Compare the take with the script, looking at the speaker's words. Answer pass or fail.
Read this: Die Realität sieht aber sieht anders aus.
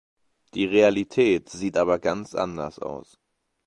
fail